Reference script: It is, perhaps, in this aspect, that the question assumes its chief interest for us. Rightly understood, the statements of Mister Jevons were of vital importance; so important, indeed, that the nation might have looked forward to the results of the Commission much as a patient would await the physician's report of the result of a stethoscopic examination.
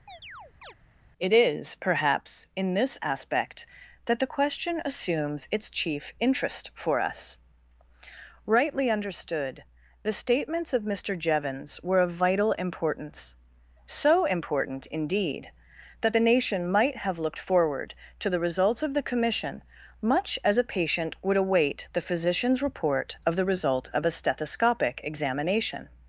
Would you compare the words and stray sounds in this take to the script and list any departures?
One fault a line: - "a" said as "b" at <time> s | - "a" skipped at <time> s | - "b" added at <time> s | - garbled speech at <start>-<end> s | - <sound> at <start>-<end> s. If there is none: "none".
- chirp at 0.1-0.7 s